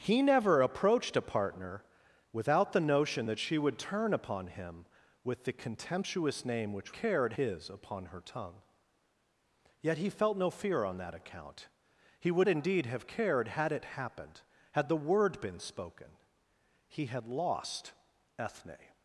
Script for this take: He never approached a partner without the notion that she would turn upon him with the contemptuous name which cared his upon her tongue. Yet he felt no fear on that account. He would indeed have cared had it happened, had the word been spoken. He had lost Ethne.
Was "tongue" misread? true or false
false